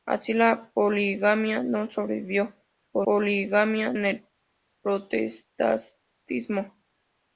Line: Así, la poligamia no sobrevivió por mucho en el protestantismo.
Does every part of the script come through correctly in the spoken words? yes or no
no